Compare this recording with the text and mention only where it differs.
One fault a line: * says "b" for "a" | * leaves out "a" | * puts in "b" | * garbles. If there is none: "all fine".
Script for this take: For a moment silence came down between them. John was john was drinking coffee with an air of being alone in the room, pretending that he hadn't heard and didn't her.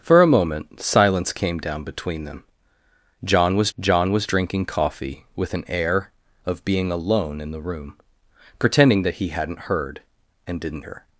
all fine